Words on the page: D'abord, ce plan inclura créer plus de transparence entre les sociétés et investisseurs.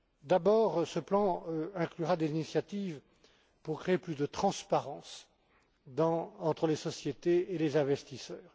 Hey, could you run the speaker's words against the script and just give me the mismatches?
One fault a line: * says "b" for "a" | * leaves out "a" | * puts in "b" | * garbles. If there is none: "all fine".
* puts in "des initiatives pour"
* puts in "les"